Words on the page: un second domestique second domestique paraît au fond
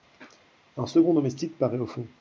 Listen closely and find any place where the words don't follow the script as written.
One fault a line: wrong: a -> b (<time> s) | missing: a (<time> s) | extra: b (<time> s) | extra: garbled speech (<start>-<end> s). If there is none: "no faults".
missing: second domestique (1.6 s)